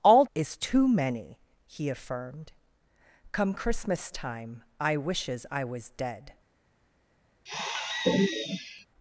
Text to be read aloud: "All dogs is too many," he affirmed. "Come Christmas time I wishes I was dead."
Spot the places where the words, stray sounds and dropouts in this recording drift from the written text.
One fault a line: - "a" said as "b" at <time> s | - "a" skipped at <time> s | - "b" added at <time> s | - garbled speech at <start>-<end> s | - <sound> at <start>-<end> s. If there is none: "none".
- "dogs" skipped at 0.2 s
- sigh at 7.5-8.9 s